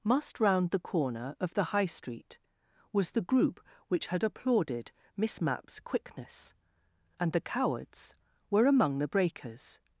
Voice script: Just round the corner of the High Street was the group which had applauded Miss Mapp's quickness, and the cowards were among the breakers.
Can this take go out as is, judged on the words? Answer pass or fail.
fail